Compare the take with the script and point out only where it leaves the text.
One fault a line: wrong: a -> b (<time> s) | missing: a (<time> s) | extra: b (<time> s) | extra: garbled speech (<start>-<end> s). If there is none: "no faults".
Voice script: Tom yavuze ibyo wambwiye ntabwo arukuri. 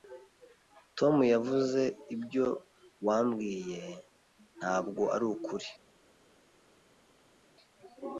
no faults